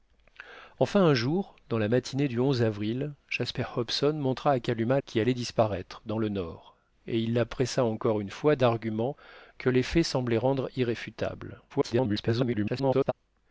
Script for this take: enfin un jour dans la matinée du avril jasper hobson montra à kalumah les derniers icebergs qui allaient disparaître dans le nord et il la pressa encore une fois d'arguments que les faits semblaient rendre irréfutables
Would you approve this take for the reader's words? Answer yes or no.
no